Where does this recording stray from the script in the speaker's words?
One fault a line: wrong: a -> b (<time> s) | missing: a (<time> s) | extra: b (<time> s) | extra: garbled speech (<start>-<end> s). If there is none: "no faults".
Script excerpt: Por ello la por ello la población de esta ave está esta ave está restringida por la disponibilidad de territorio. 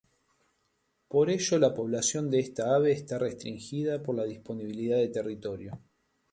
missing: por ello la (1.8 s)
missing: esta ave está (3.2 s)